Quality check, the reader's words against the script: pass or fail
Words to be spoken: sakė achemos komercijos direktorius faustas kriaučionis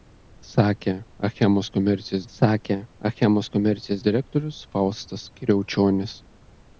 fail